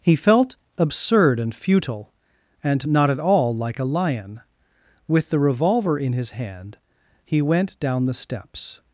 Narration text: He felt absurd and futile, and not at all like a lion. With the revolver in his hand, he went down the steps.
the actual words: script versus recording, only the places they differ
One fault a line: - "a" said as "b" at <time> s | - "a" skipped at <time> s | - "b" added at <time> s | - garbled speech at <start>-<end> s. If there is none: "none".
none